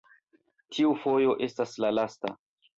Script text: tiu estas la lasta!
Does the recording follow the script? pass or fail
fail